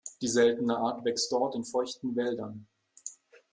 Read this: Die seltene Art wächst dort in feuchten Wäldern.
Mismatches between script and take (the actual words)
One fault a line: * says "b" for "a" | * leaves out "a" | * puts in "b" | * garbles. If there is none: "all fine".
all fine